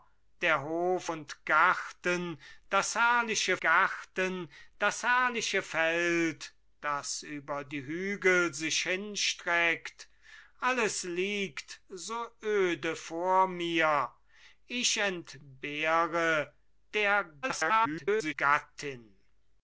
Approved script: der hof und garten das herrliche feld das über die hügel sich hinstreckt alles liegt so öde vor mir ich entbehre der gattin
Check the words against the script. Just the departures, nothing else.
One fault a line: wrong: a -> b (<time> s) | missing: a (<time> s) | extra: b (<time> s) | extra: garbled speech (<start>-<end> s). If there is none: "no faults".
extra: garten das herrliche (3.6 s)
extra: garbled speech (17.4-18.3 s)